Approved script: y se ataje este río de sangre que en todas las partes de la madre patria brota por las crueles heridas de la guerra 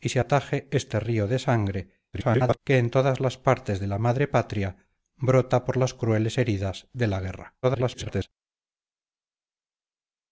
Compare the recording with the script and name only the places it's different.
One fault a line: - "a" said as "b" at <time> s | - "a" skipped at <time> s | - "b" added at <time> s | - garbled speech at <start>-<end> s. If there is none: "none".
- garbled speech at 2.1-2.6 s
- garbled speech at 7.6-8.3 s